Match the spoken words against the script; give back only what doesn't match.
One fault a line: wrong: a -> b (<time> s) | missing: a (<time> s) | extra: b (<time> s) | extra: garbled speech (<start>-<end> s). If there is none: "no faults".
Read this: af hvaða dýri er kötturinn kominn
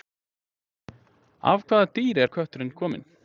no faults